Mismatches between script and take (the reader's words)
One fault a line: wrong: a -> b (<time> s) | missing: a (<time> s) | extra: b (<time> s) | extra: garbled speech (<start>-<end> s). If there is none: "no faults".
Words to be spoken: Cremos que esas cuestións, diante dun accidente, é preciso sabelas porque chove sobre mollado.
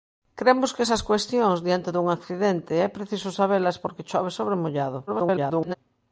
extra: garbled speech (5.1-5.7 s)